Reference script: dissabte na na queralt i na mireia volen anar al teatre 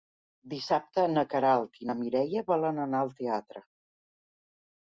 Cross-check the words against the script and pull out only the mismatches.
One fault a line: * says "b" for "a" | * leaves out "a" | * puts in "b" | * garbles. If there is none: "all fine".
* leaves out "na"